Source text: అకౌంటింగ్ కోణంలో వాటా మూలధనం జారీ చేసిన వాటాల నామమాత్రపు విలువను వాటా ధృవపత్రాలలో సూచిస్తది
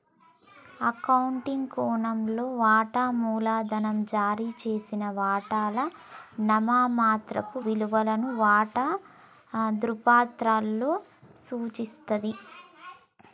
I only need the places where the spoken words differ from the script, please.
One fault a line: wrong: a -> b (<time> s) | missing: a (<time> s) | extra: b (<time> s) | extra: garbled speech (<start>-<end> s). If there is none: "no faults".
no faults